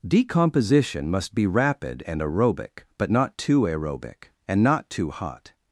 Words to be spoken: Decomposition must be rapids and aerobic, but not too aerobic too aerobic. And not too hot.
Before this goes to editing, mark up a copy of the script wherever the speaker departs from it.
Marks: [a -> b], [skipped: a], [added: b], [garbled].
Decomposition must be [rapids -> rapid] and aerobic, but not too aerobic [skipped: too aerobic.] And not too hot.